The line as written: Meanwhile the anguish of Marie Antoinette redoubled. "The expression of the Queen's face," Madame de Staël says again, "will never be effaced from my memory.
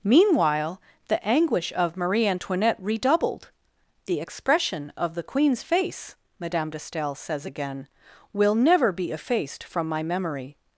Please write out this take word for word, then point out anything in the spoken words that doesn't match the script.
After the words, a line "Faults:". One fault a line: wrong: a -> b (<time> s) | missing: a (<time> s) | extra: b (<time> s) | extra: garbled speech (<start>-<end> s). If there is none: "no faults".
Meanwhile the anguish of Marie Antoinette redoubled. "The expression of the Queen's face," Madame de Staël says again, "will never be effaced from my memory.
Faults:
no faults